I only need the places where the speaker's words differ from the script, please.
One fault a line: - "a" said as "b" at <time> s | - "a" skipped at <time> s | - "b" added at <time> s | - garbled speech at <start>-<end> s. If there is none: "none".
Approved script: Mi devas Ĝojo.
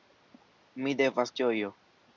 none